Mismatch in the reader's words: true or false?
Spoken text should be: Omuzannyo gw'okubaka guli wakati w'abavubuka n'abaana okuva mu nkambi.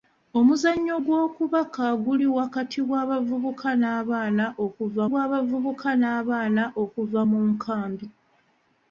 true